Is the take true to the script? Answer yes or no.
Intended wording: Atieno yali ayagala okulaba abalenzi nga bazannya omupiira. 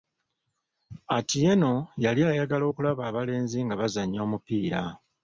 yes